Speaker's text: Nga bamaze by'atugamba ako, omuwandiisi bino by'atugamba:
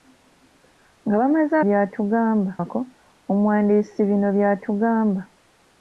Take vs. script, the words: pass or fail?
pass